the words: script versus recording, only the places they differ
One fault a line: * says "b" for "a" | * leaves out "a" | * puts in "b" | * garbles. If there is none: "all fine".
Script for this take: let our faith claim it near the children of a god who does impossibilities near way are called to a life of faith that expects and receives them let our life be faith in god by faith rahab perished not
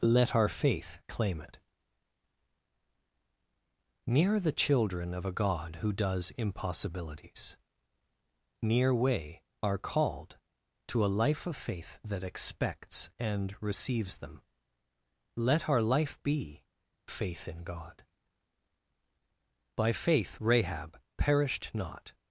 all fine